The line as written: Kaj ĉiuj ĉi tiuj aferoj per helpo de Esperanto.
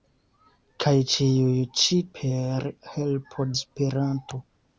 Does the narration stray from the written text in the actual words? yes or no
yes